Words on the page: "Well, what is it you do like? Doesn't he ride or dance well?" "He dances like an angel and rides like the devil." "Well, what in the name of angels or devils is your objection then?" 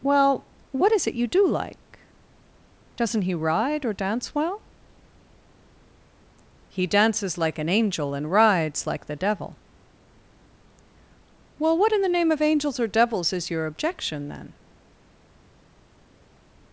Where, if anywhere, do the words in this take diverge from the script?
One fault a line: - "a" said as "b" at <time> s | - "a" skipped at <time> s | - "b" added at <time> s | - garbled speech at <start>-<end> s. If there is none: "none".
none